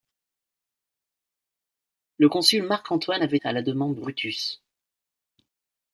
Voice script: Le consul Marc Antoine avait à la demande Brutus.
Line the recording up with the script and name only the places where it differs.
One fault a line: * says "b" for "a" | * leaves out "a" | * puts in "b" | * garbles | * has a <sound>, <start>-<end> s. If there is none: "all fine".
all fine